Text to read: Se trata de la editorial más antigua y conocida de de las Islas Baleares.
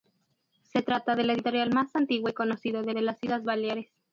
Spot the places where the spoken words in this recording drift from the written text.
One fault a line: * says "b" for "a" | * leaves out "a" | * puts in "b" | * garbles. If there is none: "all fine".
all fine